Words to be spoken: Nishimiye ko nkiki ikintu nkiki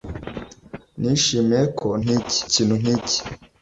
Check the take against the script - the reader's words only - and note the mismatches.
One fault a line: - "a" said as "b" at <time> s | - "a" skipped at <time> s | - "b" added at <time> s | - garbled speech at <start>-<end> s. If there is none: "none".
none